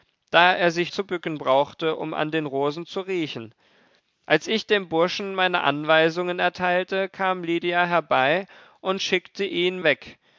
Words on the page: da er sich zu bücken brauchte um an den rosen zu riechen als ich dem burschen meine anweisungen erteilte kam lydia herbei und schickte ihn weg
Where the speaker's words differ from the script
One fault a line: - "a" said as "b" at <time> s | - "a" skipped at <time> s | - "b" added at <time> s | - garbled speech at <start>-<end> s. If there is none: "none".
none